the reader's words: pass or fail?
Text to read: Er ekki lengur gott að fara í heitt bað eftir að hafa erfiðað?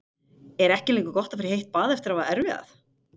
pass